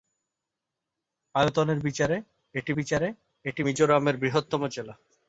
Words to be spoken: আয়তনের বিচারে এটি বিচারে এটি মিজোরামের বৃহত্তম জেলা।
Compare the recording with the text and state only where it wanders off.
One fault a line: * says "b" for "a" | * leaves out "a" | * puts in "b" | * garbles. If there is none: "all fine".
all fine